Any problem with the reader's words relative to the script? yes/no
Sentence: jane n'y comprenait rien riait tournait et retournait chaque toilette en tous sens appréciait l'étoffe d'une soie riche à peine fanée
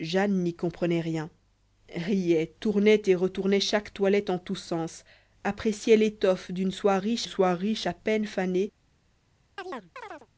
yes